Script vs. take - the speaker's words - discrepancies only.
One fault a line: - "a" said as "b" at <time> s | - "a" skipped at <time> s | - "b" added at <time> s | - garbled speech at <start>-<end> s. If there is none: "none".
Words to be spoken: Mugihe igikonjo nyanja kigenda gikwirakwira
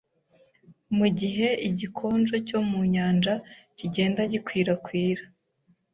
- "cyo mu" added at 2.5 s